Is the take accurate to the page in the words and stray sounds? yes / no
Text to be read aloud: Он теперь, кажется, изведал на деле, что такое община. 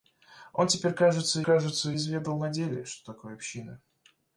no